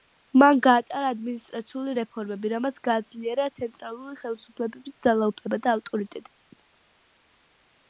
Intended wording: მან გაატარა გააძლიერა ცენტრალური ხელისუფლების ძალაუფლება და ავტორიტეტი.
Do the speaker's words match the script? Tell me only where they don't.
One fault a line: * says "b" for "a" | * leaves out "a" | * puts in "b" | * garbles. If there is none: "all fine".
* puts in "ადმინისტრაციული რეფორმები რამაც"